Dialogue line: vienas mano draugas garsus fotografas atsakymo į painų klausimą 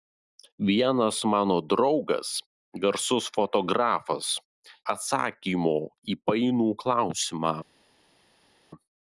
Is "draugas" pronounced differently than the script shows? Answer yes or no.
no